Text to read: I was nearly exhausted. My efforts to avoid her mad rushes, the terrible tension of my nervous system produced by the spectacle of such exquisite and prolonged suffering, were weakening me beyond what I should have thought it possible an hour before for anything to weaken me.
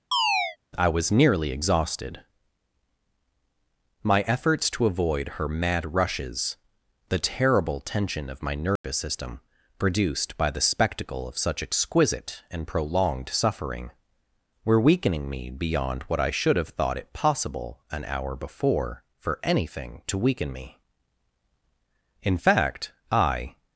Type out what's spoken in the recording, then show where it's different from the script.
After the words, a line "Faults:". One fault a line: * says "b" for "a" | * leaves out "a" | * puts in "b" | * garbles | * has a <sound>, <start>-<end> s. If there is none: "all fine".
I was nearly exhausted. My efforts to avoid her mad rushes, the terrible tension of my nervous system produced by the spectacle of such exquisite and prolonged suffering, were weakening me beyond what I should have thought it possible an hour before for anything to weaken me. In fact, I
Faults:
* has a chirp, 0.1-0.6 s
* has a dropout, 8.8-8.8 s
* puts in "In fact I"